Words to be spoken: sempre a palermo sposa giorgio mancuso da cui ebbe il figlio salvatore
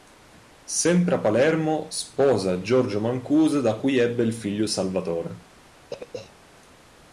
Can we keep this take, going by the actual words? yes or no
yes